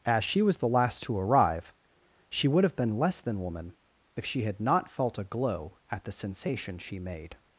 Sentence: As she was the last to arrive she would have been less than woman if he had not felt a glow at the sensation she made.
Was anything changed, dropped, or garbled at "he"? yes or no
yes